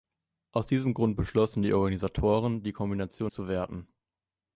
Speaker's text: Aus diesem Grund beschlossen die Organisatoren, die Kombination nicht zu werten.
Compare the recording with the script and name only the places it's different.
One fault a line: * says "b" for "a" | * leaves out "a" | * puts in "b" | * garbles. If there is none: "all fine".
* leaves out "nicht"